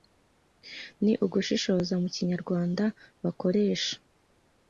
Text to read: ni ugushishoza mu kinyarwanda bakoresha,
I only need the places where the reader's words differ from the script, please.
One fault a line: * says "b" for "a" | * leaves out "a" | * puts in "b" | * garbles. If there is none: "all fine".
all fine